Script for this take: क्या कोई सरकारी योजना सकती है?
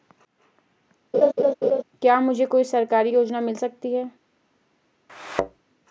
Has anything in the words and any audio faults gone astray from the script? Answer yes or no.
yes